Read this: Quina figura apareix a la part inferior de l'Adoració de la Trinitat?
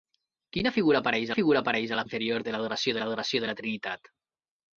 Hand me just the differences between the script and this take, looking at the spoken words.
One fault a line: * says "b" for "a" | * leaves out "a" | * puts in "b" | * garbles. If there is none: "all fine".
* puts in "figura apareix"
* leaves out "part"
* puts in "l'Adoració"